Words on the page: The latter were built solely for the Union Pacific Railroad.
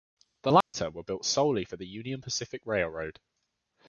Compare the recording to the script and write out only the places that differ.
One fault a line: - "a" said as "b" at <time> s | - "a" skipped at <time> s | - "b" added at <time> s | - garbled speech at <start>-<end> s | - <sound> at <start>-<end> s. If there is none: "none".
- dropout at 0.6-0.7 s